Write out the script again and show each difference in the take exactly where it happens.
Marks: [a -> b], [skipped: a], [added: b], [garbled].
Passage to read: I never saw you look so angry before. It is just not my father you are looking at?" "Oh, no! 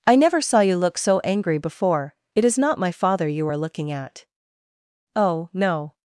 I never saw you look so angry before. It is [skipped: just] not my father you are looking at?" "Oh, no!